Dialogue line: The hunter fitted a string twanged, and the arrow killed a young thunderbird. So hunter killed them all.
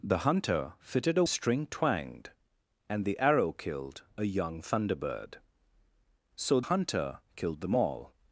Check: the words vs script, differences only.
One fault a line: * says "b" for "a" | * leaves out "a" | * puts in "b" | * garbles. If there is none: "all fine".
all fine